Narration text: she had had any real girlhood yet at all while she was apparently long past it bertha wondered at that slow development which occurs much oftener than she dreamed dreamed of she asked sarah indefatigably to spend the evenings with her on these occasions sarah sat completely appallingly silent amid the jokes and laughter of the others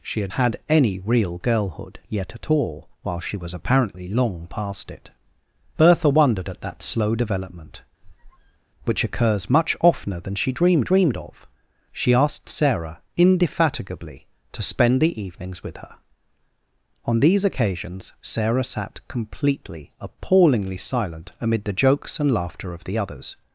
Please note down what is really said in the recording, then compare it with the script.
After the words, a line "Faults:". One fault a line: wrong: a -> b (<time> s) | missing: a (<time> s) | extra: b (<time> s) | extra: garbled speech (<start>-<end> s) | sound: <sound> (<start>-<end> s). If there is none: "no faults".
she had had any real girlhood yet at all while she was apparently long past it bertha wondered at that slow development which occurs much oftener than she dreamed dreamed of she asked sarah indefatigably to spend the evenings with her on these occasions sarah sat completely appallingly silent amid the jokes and laughter of the others
Faults:
sound: squeak (8.0-8.6 s)